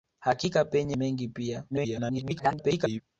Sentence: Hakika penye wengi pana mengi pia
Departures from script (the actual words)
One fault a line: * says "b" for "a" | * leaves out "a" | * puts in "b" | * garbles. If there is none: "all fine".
* leaves out "wengi pana"
* garbles